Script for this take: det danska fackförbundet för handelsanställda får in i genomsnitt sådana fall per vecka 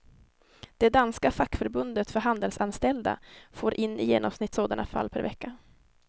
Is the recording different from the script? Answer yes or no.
no